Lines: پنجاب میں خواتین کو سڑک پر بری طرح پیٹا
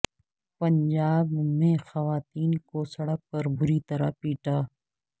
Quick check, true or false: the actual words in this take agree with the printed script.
true